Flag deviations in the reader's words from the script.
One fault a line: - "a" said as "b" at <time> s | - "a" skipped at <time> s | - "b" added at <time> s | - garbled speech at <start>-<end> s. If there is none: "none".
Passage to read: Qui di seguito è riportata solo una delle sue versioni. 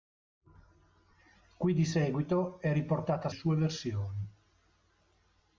- "solo una delle" skipped at 3.3 s